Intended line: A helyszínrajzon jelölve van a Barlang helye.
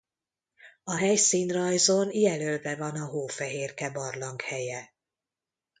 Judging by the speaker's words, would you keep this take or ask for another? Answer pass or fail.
fail